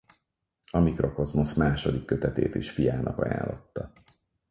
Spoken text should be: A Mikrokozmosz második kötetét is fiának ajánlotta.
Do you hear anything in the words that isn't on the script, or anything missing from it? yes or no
no